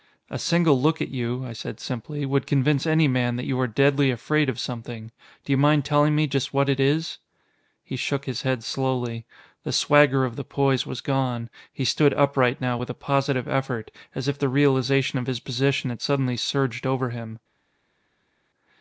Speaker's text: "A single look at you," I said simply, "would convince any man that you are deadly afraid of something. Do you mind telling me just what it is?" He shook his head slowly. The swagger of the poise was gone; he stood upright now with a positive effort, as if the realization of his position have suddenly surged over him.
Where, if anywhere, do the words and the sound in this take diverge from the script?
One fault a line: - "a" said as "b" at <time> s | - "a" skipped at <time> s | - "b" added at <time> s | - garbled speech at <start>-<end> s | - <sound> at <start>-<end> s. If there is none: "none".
- "have" said as "had" at 15.9 s